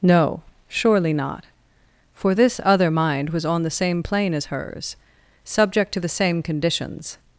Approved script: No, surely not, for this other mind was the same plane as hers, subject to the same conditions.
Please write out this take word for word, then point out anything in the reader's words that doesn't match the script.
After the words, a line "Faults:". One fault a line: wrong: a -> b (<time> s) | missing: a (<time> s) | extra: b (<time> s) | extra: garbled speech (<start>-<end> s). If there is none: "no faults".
No, surely not, for this other mind was on the same plane as hers, subject to the same conditions.
Faults:
extra: on (3.5 s)